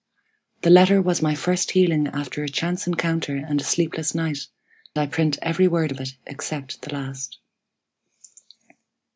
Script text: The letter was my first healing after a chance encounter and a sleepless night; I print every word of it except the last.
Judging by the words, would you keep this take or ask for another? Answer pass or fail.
pass